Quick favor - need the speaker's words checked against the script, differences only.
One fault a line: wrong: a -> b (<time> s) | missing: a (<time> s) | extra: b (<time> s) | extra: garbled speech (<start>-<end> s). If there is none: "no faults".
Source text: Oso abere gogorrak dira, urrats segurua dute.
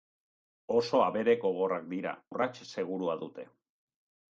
no faults